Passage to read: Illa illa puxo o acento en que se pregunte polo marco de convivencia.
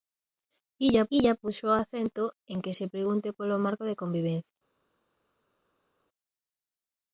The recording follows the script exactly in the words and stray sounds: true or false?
true